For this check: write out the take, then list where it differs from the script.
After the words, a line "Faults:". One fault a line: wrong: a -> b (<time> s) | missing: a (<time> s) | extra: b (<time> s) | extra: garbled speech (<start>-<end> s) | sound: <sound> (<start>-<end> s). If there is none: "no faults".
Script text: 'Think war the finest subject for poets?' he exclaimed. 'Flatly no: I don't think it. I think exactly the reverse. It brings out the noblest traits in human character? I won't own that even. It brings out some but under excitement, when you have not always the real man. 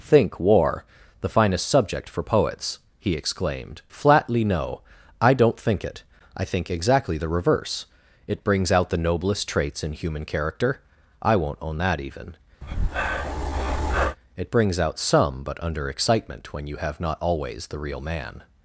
'Think war the finest subject for poets?' he exclaimed. 'Flatly no: I don't think it. I think exactly the reverse. It brings out the noblest traits in human character? I won't own that even. It brings out some but under excitement, when you have not always the real man.
Faults:
sound: breath (12.6-14.2 s)